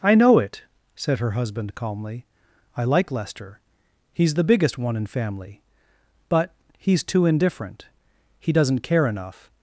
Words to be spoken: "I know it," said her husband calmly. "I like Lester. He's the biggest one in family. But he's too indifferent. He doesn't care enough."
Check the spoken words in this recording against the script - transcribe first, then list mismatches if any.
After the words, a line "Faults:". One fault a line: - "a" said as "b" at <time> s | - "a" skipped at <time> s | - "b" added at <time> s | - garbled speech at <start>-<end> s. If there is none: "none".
"I know it," said her husband calmly. "I like Lester. He's the biggest one in family. But he's too indifferent. He doesn't care enough."
Faults:
none